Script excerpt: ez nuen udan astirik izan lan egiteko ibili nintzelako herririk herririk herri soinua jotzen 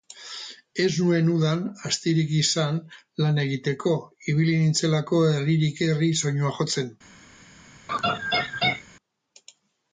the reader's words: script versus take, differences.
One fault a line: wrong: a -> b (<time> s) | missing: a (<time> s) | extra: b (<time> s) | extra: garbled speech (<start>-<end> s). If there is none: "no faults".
missing: herririk (5.9 s)